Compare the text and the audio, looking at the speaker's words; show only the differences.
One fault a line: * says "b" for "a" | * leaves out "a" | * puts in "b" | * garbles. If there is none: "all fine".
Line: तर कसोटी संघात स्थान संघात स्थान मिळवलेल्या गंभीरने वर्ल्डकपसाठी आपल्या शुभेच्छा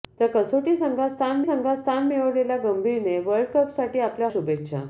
all fine